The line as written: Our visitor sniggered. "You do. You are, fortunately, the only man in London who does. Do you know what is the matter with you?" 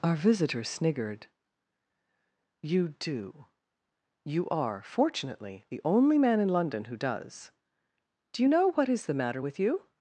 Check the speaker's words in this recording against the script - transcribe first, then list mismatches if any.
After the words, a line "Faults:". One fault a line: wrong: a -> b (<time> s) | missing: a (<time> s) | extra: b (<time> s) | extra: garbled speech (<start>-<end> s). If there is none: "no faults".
Our visitor sniggered. "You do. You are, fortunately, the only man in London who does. Do you know what is the matter with you?"
Faults:
no faults